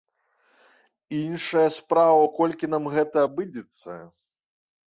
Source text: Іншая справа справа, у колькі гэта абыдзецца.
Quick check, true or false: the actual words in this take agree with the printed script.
false